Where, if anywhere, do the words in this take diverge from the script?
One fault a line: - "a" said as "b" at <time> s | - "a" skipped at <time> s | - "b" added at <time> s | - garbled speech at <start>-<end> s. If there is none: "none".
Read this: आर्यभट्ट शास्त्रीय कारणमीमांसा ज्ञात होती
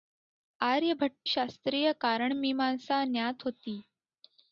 none